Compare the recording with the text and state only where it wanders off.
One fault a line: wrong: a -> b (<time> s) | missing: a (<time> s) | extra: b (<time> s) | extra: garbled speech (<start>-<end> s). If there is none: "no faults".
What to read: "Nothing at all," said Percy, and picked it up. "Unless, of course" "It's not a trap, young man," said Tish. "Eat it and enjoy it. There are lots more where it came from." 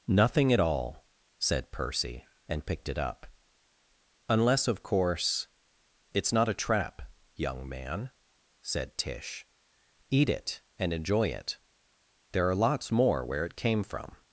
no faults